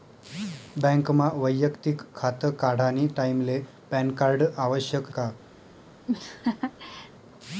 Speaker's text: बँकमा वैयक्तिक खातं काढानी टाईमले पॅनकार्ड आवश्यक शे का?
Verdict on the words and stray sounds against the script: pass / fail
fail